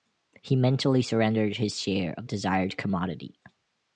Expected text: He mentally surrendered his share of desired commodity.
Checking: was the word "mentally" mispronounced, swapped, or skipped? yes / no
no